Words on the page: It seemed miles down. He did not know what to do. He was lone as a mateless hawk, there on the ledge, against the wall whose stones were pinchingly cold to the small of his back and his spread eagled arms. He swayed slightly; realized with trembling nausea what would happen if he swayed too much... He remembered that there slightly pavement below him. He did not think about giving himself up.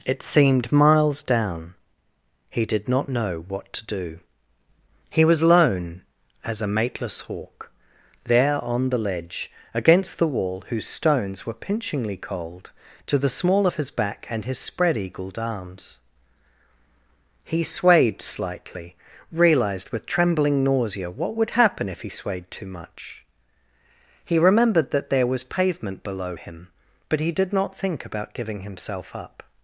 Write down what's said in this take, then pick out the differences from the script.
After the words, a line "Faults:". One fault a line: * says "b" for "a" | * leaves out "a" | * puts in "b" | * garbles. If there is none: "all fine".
It seemed miles down. He did not know what to do. He was lone as a mateless hawk, there on the ledge, against the wall whose stones were pinchingly cold to the small of his back and his spread eagled arms. He swayed slightly; realized with trembling nausea what would happen if he swayed too much... He remembered that there was pavement below him. But he did not think about giving himself up.
Faults:
* says "was" for "slightly"
* puts in "But"